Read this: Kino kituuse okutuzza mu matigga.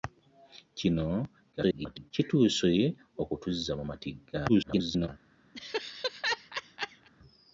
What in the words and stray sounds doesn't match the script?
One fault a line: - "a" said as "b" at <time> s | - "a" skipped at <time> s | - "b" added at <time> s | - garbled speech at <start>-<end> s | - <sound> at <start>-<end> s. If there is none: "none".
- garbled speech at 1.5-2.1 s
- garbled speech at 4.5-5.1 s
- laugh at 5.5-7.1 s